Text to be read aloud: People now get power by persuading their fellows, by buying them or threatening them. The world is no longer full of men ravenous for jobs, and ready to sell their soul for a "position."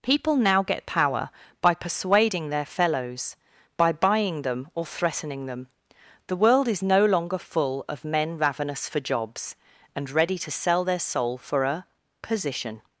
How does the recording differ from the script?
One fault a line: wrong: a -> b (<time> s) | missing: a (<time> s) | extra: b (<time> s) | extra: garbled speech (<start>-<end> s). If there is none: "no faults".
no faults